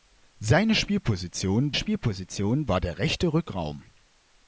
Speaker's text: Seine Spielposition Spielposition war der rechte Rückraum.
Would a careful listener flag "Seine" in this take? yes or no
no